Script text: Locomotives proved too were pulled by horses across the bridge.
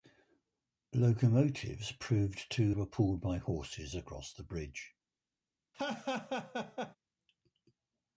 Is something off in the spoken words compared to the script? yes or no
no